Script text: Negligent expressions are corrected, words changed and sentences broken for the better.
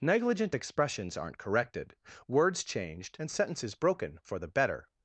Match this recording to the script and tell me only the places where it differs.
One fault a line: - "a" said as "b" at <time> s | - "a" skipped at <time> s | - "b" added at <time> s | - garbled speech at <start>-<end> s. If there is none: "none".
- "are" said as "aren't" at 1.2 s